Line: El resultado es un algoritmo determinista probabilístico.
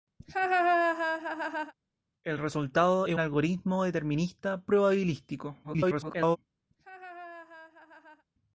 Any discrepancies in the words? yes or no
yes